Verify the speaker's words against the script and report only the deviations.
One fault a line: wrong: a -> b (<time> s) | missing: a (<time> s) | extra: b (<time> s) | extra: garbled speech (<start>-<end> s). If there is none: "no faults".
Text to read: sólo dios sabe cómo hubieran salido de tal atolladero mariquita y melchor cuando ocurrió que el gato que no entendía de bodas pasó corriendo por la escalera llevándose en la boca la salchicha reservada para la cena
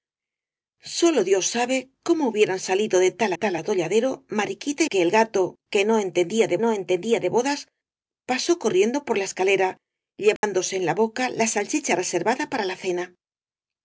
extra: tal (3.3 s)
wrong: melchor cuando ocurrió -> que el gato (4.9 s)
wrong: el gato que -> no entendía de (5.8 s)